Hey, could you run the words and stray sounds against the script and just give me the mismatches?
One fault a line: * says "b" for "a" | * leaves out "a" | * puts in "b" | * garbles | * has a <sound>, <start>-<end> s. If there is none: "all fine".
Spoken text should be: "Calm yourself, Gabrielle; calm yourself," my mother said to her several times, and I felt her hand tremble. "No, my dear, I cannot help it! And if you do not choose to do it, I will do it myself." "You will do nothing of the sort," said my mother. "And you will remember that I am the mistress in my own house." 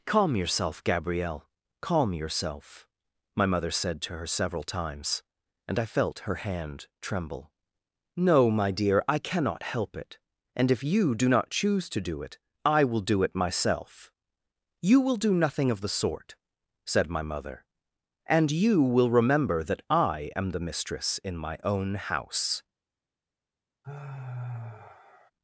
* has a sigh, 23.8-25.3 s